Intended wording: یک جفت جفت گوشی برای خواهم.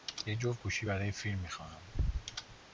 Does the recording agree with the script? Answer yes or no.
no